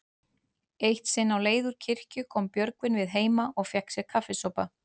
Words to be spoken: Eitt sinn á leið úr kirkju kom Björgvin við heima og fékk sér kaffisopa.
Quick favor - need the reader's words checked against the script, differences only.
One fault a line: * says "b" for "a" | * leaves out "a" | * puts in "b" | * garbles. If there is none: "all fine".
all fine